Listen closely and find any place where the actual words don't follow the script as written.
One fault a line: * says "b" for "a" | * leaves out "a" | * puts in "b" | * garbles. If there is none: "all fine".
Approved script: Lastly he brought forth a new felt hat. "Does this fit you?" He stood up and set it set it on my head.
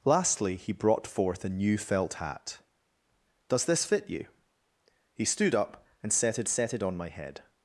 all fine